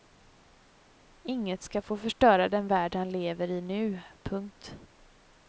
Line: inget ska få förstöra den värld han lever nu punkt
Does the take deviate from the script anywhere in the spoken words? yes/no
yes